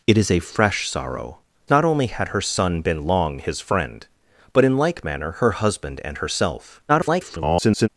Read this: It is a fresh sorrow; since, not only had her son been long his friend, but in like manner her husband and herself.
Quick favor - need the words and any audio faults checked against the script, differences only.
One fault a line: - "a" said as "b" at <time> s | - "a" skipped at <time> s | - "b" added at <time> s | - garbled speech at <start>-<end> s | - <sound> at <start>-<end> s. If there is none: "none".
- "since" skipped at 1.4 s
- garbled speech at 6.9-7.9 s